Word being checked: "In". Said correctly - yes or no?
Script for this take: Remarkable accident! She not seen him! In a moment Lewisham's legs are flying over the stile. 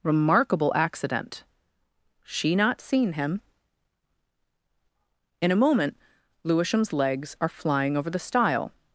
yes